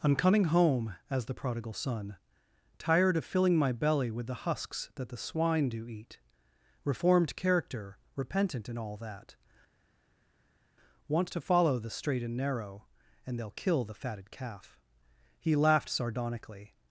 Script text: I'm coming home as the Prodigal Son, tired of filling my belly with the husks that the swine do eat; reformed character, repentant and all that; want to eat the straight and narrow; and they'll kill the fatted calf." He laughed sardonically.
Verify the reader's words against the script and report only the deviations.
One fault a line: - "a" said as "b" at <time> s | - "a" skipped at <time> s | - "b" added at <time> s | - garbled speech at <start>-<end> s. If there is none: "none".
- "eat" said as "follow" at 11.4 s